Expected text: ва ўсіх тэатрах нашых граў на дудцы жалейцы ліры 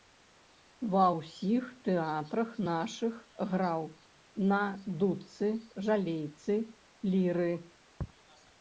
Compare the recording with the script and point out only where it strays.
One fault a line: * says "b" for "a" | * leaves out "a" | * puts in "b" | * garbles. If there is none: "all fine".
all fine